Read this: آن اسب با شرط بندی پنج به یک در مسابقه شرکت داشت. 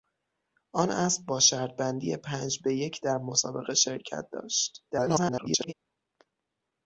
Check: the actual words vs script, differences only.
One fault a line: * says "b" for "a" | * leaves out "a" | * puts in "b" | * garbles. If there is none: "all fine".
* garbles